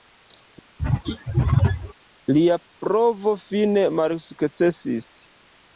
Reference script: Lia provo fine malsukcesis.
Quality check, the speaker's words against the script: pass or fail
pass